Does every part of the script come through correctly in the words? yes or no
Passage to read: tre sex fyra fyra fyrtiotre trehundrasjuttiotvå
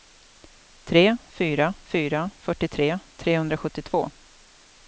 no